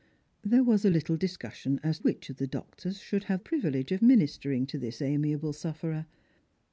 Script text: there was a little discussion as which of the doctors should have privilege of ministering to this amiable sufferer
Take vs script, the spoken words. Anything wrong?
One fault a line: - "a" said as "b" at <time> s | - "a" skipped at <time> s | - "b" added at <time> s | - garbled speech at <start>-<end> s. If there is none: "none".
none